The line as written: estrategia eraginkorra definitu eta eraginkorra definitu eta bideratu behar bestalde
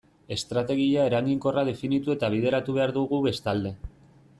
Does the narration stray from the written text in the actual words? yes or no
yes